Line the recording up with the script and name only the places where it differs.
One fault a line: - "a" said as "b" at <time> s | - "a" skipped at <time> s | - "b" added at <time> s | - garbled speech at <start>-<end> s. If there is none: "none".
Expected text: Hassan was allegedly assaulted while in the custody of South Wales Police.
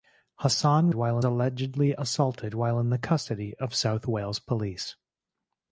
- "was" said as "while" at 0.9 s